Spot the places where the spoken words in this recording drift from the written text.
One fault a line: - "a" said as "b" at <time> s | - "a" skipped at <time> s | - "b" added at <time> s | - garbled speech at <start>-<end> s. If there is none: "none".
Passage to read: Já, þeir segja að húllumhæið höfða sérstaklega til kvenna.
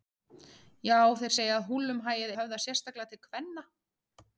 none